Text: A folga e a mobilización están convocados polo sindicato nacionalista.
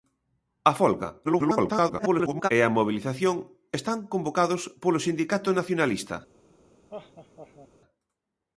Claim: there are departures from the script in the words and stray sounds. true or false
true